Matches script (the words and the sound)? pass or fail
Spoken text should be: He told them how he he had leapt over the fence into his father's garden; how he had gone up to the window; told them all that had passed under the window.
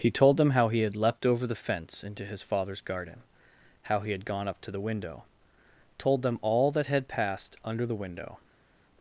fail